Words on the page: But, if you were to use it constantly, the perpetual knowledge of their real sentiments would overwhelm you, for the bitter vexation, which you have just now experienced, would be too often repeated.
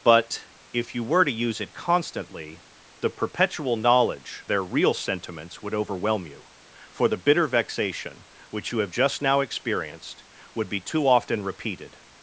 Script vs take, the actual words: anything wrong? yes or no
yes